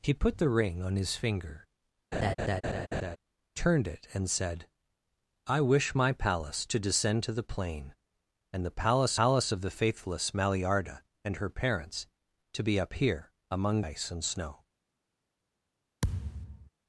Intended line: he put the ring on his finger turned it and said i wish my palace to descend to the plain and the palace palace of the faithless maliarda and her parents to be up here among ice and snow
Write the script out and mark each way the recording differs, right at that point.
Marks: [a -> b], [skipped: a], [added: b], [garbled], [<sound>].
he put the ring on his finger [laugh] turned it and said i wish my palace to descend to the plain and the palace palace of the faithless maliarda and her parents to be up here among ice and snow [thud]